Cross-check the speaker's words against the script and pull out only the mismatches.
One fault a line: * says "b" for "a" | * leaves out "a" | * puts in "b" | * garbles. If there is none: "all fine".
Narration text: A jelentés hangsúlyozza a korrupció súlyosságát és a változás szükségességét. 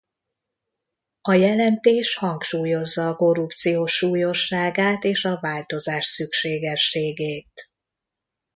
all fine